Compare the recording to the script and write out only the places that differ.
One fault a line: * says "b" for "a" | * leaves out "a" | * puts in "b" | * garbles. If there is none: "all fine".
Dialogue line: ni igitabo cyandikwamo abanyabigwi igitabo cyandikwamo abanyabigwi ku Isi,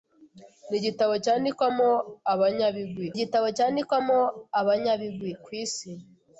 all fine